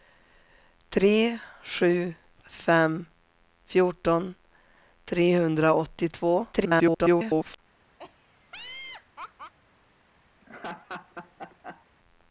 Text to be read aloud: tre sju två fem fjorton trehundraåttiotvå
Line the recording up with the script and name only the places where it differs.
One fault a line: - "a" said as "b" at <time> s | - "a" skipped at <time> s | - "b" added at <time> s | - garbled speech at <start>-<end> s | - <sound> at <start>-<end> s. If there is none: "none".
- "två" skipped at 2.1 s
- garbled speech at 6.5-7.6 s
- laugh at 8.0-9.5 s
- laugh at 10.4-11.9 s